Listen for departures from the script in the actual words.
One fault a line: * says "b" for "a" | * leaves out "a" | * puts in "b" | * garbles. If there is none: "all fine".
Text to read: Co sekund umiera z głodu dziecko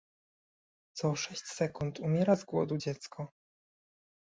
* puts in "sześć"